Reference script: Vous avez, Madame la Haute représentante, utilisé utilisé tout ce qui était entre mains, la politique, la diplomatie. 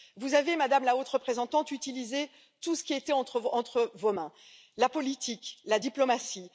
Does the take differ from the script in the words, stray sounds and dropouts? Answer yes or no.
yes